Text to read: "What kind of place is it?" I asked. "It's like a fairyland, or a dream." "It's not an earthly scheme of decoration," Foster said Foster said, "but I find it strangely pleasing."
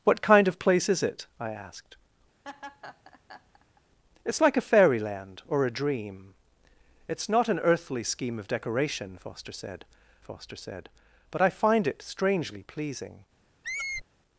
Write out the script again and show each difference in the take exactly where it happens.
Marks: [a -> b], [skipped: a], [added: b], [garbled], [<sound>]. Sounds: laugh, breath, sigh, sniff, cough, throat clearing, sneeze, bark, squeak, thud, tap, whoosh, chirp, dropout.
"What kind of place is it?" I asked. [laugh] "It's like a fairyland, or a dream." "It's not an earthly scheme of decoration," Foster said Foster said, "but I find it strangely pleasing." [squeak]